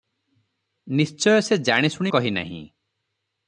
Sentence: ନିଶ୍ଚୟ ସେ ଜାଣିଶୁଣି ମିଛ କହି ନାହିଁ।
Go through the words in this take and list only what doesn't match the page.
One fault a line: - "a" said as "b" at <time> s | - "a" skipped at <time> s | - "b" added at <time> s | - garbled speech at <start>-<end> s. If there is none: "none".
- "ମିଛ" skipped at 2.1 s